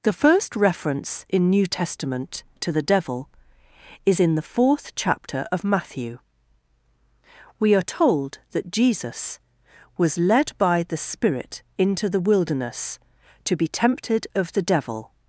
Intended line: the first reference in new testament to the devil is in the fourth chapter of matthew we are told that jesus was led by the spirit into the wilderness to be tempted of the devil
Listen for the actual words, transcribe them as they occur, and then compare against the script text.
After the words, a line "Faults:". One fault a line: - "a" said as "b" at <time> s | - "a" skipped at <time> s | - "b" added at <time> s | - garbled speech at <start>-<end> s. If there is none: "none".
the first reference in new testament to the devil is in the fourth chapter of matthew we are told that jesus was led by the spirit into the wilderness to be tempted of the devil
Faults:
none